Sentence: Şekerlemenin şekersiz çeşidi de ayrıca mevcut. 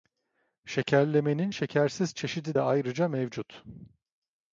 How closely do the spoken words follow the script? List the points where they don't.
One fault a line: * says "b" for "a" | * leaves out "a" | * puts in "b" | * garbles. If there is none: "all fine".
all fine